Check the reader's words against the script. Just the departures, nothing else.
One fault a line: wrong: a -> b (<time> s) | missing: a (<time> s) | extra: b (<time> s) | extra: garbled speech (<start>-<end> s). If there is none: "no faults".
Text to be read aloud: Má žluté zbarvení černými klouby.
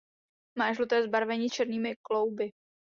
no faults